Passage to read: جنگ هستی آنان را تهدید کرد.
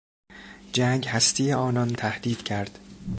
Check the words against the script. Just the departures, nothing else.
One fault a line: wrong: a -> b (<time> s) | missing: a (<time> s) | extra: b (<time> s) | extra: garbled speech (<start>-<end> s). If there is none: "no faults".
missing: را (1.9 s)